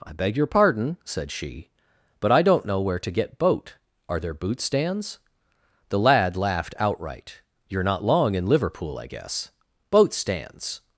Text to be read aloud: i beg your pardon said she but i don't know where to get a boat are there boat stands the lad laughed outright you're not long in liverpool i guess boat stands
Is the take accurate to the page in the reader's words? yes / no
no